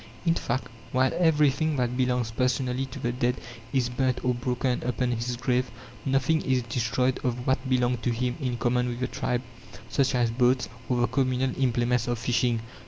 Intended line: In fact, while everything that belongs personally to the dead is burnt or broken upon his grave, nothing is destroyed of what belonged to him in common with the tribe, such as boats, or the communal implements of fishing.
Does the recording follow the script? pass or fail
pass